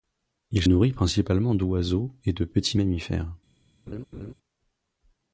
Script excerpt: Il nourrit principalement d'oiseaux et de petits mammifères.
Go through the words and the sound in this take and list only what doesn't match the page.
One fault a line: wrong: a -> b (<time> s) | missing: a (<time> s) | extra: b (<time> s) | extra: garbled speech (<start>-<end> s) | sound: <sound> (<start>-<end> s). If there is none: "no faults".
sound: laugh (3.9-4.3 s)